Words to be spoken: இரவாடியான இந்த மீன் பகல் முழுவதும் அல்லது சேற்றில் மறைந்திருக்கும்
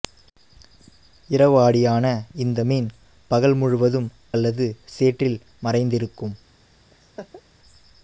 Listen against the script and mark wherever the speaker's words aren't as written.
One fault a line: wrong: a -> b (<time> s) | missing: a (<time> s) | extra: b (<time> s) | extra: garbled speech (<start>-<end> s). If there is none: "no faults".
no faults